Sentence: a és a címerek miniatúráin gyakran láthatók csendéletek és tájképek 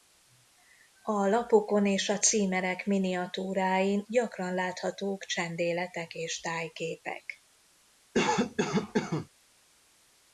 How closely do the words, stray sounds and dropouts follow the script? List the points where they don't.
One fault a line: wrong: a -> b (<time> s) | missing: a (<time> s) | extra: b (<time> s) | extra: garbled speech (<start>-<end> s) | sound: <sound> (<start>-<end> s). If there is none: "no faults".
extra: lapokon (1.3 s)
sound: cough (8.1-9.3 s)